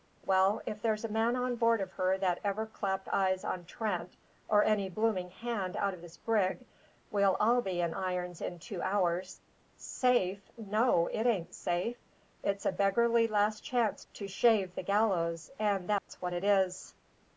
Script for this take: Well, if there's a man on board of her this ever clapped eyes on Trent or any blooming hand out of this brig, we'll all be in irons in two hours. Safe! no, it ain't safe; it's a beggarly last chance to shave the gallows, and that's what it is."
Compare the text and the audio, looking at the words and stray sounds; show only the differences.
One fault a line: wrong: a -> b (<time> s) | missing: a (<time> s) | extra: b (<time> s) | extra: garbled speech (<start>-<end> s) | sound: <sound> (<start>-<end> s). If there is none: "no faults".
wrong: this -> that (2.2 s)
sound: dropout (16.0-16.1 s)